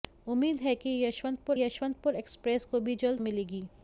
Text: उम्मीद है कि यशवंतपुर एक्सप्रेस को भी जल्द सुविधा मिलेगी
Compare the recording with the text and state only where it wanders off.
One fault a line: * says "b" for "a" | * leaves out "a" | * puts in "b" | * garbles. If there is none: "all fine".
* puts in "यशवंतपुर"
* leaves out "सुविधा"